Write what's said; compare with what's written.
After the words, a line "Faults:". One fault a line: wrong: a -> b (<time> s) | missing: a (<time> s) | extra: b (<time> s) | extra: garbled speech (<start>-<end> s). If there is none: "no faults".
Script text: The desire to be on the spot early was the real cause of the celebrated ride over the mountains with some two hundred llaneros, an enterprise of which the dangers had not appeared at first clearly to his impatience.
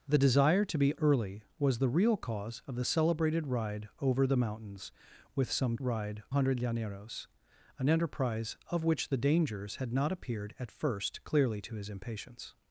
The desire to be early was the real cause of the celebrated ride over the mountains with some ride hundred llaneros, an enterprise of which the dangers had not appeared at first clearly to his impatience.
Faults:
missing: on the spot (0.9 s)
wrong: two -> ride (5.8 s)